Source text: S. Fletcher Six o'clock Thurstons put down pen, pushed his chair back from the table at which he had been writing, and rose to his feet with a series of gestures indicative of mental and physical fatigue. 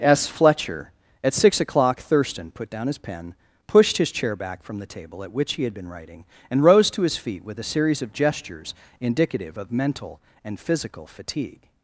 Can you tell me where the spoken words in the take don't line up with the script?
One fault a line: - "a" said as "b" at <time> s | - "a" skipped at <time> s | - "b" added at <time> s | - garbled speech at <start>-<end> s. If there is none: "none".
- "At" added at 1.2 s
- "Thurstons" said as "Thurston" at 2.0 s
- "his" added at 2.9 s